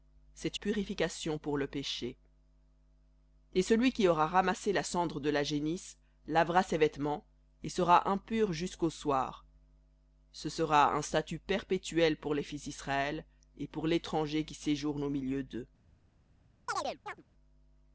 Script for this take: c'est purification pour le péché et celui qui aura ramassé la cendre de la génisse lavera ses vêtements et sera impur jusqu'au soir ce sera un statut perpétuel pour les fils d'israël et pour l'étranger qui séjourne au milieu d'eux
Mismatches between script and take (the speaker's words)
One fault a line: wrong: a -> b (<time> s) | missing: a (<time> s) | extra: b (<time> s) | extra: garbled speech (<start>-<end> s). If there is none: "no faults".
no faults